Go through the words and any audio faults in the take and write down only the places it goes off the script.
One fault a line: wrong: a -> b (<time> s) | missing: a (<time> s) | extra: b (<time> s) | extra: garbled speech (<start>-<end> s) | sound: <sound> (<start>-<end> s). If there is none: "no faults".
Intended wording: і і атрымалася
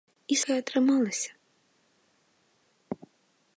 no faults